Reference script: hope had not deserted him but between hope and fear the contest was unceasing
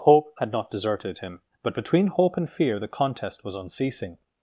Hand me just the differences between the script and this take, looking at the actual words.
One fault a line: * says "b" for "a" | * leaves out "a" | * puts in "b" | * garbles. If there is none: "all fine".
all fine